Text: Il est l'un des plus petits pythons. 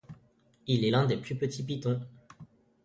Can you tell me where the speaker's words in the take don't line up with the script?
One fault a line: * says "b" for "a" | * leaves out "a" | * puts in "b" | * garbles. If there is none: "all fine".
all fine